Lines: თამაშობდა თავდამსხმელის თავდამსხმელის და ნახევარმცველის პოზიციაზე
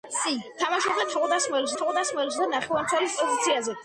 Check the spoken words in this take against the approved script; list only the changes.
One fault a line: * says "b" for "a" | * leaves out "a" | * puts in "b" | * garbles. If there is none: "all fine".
all fine